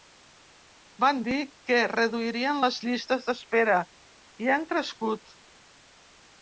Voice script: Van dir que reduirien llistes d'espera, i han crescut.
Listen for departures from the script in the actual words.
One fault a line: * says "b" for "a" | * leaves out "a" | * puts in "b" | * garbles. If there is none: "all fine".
* puts in "les"